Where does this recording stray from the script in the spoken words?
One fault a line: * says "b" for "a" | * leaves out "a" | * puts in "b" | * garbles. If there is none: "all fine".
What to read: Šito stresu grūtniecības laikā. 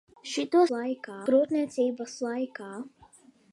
* says "laikā" for "stresu"